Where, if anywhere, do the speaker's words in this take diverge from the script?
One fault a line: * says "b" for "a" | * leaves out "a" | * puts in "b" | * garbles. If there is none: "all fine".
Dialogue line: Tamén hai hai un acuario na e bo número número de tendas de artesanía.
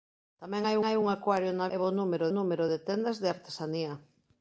all fine